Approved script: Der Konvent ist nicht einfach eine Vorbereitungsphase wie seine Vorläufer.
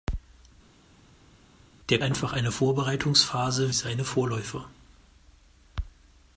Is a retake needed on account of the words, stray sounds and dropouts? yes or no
yes